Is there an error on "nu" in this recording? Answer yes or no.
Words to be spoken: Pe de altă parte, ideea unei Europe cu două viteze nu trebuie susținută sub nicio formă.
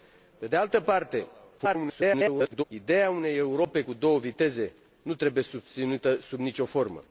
no